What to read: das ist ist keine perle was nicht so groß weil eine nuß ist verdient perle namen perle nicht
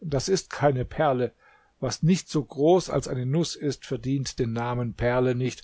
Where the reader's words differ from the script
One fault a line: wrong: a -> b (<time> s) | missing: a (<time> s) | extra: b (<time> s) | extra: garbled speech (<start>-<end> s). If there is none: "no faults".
missing: ist (0.5 s)
wrong: weil -> als (2.9 s)
wrong: perle -> den (4.4 s)